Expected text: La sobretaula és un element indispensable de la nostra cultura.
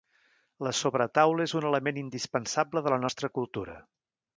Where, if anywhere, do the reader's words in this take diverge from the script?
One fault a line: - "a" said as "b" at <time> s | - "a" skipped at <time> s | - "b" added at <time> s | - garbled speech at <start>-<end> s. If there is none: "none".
none